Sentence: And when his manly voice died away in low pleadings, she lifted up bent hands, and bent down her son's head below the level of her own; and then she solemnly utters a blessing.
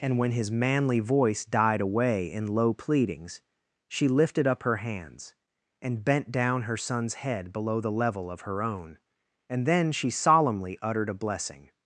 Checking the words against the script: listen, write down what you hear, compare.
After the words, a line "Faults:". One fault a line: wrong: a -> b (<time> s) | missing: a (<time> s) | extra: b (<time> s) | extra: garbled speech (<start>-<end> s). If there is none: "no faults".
And when his manly voice died away in low pleadings, she lifted up her hands, and bent down her son's head below the level of her own; and then she solemnly uttered a blessing.
Faults:
wrong: bent -> her (4.6 s)
wrong: utters -> uttered (10.8 s)